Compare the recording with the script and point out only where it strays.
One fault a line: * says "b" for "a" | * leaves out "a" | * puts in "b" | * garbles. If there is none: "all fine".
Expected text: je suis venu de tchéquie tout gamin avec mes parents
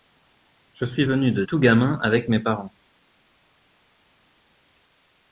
* leaves out "tchéquie"